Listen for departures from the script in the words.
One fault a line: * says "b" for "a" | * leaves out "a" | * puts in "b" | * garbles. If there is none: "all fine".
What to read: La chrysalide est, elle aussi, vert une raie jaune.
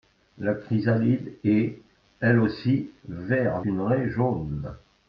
all fine